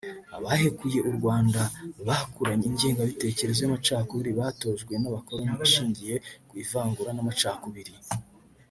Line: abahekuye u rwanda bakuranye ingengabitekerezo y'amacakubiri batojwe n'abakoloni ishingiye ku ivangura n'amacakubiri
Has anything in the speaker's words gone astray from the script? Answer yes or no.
no